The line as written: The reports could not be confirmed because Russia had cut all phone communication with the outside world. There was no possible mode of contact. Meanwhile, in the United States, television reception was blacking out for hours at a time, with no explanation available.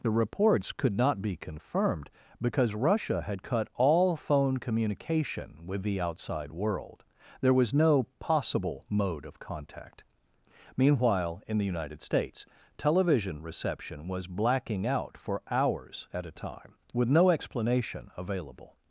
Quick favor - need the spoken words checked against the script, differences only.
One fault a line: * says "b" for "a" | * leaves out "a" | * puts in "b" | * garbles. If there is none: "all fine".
all fine